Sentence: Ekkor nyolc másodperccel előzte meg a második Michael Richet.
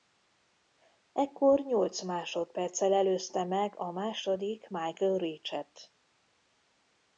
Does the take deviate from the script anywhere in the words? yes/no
no